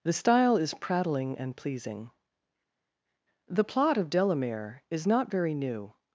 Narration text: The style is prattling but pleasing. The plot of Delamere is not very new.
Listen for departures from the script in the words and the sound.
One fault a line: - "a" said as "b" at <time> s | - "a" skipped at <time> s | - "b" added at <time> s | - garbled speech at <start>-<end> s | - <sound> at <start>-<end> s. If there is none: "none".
- "but" said as "and" at 1.3 s